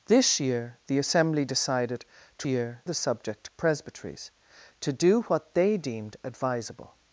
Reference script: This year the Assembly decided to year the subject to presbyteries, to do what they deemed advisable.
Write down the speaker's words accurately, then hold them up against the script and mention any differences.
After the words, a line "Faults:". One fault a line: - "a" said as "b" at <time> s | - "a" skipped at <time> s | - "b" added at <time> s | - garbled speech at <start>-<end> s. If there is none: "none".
This year the Assembly decided to year the subject to presbyteries, to do what they deemed advisable.
Faults:
none